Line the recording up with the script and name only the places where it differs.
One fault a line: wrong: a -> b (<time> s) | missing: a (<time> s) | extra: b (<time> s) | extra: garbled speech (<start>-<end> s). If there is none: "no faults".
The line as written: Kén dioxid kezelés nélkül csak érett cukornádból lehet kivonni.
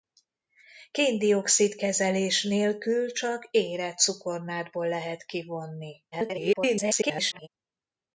extra: garbled speech (6.1-7.5 s)